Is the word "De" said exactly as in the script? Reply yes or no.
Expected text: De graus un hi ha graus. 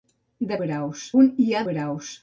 yes